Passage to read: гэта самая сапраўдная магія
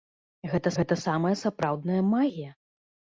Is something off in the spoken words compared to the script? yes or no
yes